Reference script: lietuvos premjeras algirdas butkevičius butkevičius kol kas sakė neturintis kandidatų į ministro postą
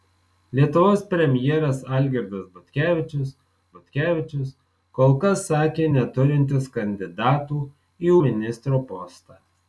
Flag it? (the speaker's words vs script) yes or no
no